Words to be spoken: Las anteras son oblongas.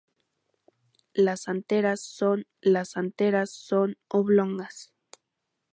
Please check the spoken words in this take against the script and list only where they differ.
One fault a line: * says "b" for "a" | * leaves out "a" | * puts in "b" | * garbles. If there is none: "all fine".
* puts in "las anteras son"